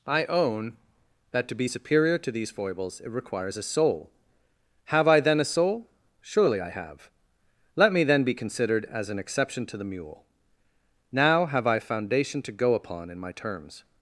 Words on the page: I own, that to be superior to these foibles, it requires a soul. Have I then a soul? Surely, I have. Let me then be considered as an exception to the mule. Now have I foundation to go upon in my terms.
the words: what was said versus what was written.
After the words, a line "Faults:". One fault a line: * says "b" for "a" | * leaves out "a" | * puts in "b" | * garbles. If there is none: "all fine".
I own, that to be superior to these foibles, it requires a soul. Have I then a soul? Surely, I have. Let me then be considered as an exception to the mule. Now have I foundation to go upon in my terms.
Faults:
all fine